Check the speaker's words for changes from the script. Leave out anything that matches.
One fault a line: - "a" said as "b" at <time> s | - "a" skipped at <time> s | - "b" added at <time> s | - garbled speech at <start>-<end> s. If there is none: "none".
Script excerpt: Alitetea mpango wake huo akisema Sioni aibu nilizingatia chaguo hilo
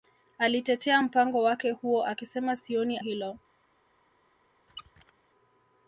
- "aibu nilizingatia chaguo" skipped at 3.0 s